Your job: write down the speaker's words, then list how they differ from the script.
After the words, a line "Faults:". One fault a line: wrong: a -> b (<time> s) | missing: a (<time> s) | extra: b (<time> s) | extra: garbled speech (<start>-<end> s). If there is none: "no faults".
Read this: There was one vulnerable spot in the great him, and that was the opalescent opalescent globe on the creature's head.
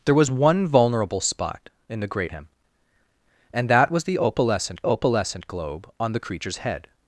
There was one vulnerable spot in the great him, and that was the opalescent opalescent globe on the creature's head.
Faults:
no faults